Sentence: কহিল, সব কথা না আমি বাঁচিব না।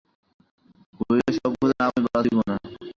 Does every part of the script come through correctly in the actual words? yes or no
yes